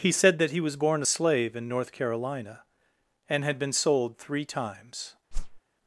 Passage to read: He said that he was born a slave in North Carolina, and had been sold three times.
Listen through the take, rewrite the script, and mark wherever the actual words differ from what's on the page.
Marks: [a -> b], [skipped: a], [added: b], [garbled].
He said that he was born a slave in North Carolina, and had been sold three times.